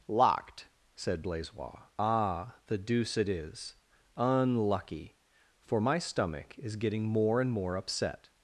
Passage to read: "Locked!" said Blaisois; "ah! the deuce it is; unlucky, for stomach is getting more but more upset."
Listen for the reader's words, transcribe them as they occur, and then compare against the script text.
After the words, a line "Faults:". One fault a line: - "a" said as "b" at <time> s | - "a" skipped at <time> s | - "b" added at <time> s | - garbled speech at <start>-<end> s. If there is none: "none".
"Locked!" said Blaisois; "ah! the deuce it is; unlucky, for my stomach is getting more and more upset."
Faults:
- "my" added at 5.8 s
- "but" said as "and" at 7.4 s